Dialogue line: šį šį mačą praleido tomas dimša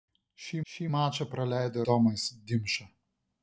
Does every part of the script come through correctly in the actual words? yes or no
yes